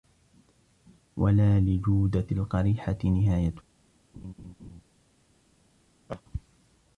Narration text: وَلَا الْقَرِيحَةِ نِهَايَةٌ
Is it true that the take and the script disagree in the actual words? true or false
true